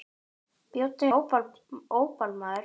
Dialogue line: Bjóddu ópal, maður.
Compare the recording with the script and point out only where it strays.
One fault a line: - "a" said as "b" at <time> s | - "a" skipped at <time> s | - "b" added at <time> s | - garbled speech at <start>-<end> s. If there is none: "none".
none